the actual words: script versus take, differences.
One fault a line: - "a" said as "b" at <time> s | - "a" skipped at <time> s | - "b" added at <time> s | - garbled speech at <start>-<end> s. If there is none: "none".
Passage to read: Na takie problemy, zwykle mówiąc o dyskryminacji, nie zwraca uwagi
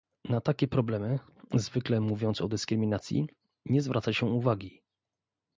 - "się" added at 4.1 s